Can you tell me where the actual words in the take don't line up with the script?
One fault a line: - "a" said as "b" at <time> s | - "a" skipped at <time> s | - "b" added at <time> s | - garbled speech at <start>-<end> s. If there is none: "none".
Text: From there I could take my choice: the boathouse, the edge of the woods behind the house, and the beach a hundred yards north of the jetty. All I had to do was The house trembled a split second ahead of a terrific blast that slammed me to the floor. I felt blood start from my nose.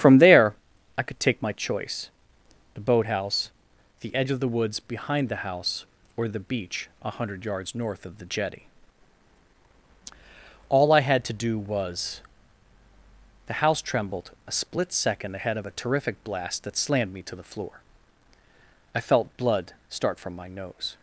- "and" said as "or" at 6.2 s